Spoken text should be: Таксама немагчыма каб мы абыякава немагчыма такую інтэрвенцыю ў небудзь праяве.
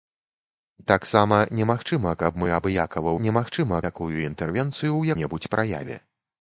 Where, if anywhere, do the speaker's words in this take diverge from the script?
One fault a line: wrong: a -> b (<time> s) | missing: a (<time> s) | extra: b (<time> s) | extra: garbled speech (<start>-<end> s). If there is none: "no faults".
no faults